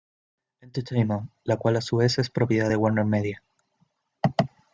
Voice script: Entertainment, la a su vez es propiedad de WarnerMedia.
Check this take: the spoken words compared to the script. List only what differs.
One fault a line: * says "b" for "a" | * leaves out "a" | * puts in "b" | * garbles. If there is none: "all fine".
* puts in "cual"